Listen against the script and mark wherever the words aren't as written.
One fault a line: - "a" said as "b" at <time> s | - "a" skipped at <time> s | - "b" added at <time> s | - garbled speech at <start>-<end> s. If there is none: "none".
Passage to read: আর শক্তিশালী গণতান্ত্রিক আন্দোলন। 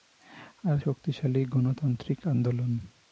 none